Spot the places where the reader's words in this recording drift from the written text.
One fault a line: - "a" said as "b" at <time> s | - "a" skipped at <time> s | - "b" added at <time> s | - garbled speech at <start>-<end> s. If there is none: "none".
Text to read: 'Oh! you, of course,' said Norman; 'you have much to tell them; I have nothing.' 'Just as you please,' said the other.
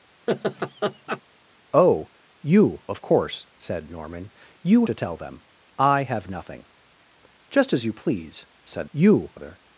- "have much" skipped at 4.9 s
- "the" said as "you" at 8.9 s